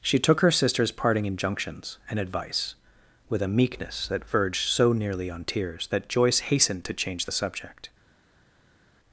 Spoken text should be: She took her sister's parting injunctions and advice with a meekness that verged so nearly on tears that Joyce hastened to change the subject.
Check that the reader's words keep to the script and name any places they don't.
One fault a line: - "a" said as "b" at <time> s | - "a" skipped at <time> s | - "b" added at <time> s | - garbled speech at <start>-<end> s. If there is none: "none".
none